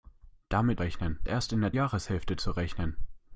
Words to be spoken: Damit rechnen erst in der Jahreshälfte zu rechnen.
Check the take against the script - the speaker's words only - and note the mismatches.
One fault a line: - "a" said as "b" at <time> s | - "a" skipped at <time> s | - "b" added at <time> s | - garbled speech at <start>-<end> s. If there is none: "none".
none